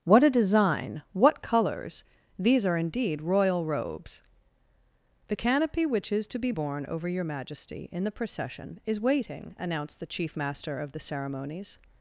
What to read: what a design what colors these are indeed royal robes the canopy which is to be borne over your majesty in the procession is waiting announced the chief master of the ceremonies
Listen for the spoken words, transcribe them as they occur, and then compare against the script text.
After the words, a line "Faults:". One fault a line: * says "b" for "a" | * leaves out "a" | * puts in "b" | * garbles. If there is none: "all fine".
what a design what colors these are indeed royal robes the canopy which is to be borne over your majesty in the procession is waiting announced the chief master of the ceremonies
Faults:
all fine